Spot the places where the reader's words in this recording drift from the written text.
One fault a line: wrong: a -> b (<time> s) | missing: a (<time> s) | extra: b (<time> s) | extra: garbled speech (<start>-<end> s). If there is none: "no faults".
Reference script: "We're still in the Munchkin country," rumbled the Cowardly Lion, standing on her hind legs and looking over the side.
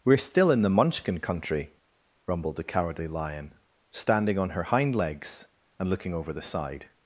no faults